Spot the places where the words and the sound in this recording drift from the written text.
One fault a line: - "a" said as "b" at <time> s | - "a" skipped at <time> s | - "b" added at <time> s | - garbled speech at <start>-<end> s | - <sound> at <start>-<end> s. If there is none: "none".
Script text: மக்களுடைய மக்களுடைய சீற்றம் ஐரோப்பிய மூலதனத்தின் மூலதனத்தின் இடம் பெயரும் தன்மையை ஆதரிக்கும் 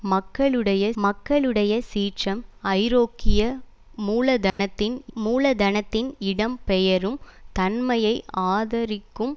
- dropout at 4.5-4.6 s